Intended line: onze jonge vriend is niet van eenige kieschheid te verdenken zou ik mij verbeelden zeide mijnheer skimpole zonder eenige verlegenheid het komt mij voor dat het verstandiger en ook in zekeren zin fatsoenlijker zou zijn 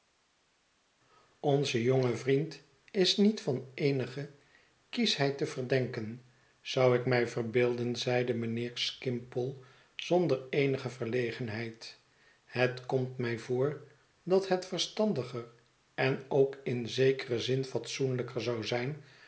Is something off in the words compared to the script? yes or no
no